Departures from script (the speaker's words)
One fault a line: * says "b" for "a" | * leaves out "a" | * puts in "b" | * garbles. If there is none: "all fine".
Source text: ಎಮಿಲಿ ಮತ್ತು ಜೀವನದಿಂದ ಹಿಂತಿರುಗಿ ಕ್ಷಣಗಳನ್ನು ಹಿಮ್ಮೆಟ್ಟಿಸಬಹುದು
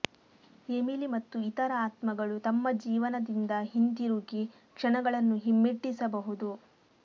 * puts in "ಇತರ ಆತ್ಮಗಳು ತಮ್ಮ"